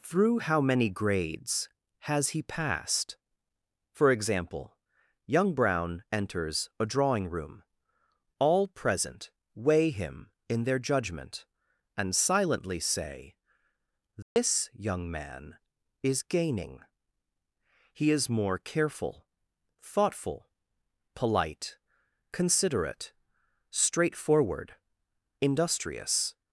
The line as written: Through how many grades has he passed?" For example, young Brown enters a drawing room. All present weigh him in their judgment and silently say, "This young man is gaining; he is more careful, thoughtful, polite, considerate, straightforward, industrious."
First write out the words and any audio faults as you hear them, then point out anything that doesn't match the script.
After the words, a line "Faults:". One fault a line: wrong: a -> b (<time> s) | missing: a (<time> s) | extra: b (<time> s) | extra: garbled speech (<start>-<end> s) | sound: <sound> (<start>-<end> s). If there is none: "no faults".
Through how many grades has he passed?" For example, young Brown enters a drawing room. All present weigh him in their judgment and silently say, "This young man is gaining; he is more careful, thoughtful, polite, considerate, straightforward, industrious."
Faults:
sound: dropout (14.2-14.4 s)